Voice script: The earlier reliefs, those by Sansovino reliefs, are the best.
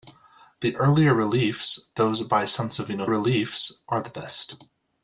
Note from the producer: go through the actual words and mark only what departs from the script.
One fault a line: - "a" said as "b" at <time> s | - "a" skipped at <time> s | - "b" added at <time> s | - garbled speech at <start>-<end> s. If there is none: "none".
none